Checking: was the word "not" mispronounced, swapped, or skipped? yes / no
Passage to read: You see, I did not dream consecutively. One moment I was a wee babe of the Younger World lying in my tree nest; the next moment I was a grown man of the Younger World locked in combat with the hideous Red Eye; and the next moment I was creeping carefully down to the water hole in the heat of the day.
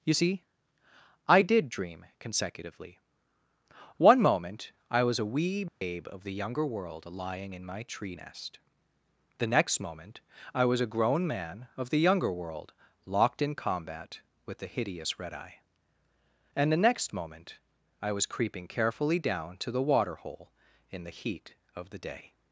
yes